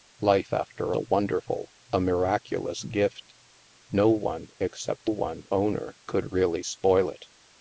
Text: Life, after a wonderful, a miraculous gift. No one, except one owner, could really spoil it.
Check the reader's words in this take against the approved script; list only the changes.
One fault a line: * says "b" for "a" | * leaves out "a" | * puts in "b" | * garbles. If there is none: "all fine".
all fine